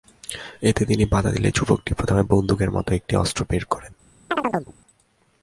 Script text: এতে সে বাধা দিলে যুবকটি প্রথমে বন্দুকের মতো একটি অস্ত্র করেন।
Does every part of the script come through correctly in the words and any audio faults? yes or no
no